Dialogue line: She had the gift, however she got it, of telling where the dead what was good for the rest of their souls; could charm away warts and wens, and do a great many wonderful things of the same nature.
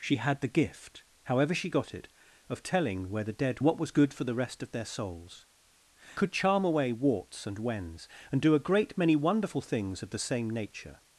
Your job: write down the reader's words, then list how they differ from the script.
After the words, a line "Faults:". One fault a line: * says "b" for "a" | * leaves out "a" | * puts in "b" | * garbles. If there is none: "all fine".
She had the gift, however she got it, of telling where the dead what was good for the rest of their souls; could charm away warts and wens, and do a great many wonderful things of the same nature.
Faults:
all fine